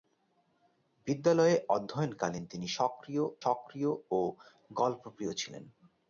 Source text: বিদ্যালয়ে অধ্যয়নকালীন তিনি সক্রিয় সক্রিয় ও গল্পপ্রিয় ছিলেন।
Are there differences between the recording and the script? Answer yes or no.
no